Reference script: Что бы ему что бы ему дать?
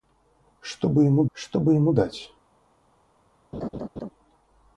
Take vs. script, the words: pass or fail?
pass